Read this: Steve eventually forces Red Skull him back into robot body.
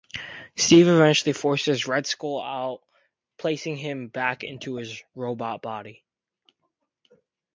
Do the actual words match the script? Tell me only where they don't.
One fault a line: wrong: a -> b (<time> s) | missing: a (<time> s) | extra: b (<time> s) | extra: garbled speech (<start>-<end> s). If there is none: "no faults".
extra: out placing (2.4 s)
extra: his (4.8 s)